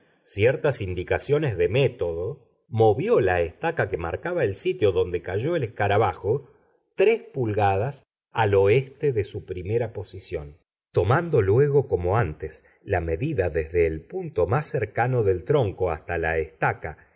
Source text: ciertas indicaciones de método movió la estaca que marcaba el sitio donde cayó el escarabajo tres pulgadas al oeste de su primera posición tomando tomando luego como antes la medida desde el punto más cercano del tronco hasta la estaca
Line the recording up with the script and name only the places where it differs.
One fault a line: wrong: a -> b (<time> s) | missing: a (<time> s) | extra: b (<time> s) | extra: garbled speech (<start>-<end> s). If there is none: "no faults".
missing: tomando (11.4 s)